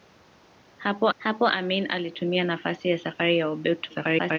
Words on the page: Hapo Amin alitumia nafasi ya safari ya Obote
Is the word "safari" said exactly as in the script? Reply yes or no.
yes